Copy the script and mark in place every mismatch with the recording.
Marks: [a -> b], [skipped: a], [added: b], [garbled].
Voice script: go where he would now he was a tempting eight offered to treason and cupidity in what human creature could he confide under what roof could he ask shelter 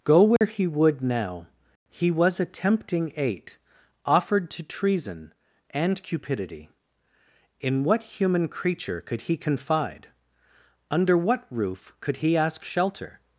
go where he would now he was a tempting eight offered to treason and cupidity in what human creature could he confide under what roof could he ask shelter